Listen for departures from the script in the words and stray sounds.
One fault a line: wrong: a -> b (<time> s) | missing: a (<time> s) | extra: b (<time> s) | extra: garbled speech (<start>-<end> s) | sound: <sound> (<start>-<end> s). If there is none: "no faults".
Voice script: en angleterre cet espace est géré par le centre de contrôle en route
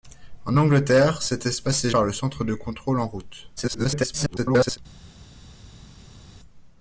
missing: géré (1.9 s)
extra: garbled speech (3.6-4.8 s)